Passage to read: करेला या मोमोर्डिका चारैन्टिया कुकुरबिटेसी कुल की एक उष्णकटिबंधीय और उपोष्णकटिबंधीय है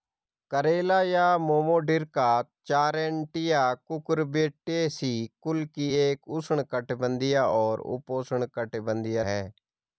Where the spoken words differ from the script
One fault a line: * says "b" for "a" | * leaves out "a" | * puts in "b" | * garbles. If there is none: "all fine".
all fine